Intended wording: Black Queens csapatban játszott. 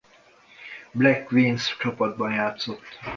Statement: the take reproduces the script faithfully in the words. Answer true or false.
true